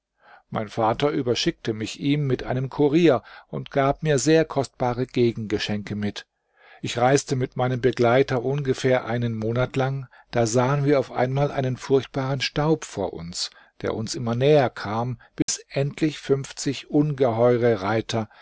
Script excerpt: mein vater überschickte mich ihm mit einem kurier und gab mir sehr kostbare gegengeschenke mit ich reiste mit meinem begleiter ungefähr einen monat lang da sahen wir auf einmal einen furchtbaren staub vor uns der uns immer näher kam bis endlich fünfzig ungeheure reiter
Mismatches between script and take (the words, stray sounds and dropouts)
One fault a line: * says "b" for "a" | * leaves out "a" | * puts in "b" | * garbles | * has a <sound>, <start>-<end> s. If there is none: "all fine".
* has a dropout, 15.4-15.5 s